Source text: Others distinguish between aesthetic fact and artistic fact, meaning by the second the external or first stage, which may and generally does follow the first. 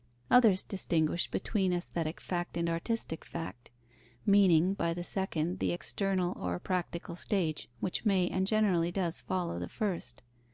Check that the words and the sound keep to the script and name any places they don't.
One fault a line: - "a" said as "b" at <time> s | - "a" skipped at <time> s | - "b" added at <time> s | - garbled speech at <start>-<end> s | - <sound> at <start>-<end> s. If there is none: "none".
- "first" said as "practical" at 6.6 s